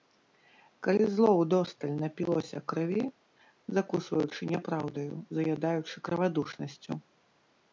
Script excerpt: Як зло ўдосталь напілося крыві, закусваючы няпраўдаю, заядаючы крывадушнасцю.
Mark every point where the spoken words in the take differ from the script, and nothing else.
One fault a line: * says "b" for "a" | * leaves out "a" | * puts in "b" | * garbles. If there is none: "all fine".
* says "Калі" for "Як"